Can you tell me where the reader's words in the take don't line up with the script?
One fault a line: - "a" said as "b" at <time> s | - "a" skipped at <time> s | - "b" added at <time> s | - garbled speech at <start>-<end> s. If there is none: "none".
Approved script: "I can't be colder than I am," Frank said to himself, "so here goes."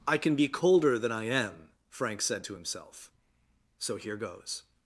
- "can't" said as "can" at 0.2 s